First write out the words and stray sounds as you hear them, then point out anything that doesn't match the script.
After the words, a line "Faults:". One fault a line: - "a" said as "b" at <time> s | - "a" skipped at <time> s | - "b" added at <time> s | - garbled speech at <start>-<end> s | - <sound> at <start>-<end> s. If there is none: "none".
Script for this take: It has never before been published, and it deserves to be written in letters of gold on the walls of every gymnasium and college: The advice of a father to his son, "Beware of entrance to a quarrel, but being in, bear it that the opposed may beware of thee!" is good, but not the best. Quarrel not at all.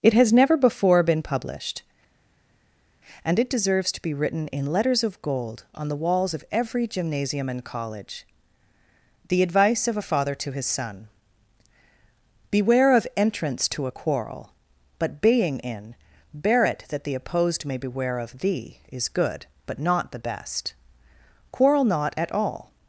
It has never before been published, and it deserves to be written in letters of gold on the walls of every gymnasium and college: The advice of a father to his son, "Beware of entrance to a quarrel, but being in, bear it that the opposed may beware of thee!" is good, but not the best. Quarrel not at all.
Faults:
none